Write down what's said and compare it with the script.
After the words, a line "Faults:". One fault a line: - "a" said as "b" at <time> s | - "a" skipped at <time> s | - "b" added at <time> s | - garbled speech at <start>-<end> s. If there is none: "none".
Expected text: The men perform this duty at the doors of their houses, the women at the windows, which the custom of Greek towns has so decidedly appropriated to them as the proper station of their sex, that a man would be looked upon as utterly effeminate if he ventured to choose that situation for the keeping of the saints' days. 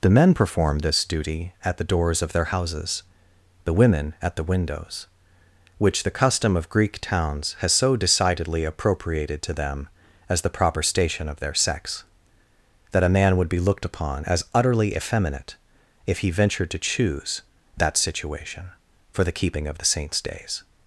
The men perform this duty at the doors of their houses, the women at the windows, which the custom of Greek towns has so decidedly appropriated to them as the proper station of their sex, that a man would be looked upon as utterly effeminate if he ventured to choose that situation for the keeping of the saints' days.
Faults:
none